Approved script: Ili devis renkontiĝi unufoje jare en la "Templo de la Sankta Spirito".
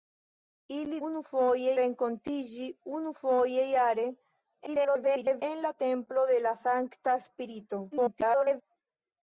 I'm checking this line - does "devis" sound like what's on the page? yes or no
no